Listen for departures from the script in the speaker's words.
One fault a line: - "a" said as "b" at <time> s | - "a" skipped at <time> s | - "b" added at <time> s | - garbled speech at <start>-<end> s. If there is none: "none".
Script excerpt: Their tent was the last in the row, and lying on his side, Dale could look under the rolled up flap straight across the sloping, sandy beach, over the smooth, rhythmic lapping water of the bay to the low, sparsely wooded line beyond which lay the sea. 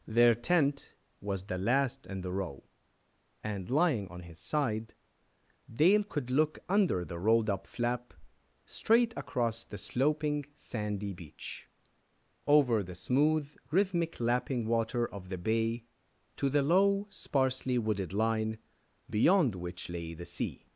none